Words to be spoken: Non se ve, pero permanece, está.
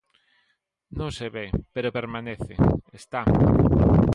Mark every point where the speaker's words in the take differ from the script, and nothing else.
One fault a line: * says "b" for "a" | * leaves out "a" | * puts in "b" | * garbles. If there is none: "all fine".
all fine